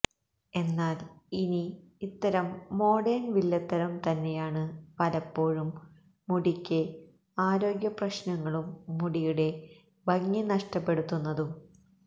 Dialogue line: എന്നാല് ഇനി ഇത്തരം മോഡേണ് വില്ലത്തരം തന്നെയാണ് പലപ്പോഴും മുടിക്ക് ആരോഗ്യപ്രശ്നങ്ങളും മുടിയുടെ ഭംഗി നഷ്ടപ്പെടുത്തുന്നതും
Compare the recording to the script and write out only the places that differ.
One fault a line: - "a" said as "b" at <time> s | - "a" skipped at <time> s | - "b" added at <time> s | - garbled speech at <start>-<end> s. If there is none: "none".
none